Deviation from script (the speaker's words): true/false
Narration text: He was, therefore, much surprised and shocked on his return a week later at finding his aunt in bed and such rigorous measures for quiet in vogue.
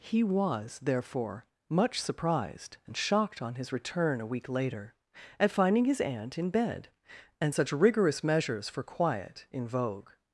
false